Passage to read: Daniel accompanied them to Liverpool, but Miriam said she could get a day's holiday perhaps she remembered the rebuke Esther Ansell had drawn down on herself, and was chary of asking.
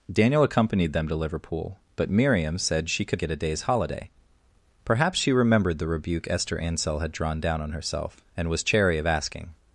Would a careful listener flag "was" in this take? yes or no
no